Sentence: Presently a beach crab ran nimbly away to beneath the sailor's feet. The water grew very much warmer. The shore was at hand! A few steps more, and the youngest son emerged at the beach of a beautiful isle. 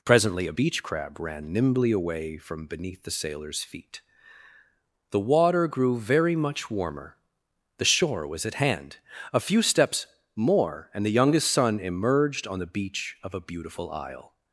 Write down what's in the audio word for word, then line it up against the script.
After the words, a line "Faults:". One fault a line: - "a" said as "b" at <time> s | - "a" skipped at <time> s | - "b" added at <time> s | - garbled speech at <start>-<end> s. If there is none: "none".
Presently a beach crab ran nimbly away from beneath the sailor's feet. The water grew very much warmer. The shore was at hand! A few steps more, and the youngest son emerged on the beach of a beautiful isle.
Faults:
- "to" said as "from" at 2.4 s
- "at" said as "on" at 12.5 s